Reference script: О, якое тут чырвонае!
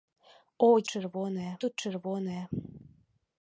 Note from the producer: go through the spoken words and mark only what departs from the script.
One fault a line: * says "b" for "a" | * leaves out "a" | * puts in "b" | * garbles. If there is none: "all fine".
* says "чырвонае" for "якое"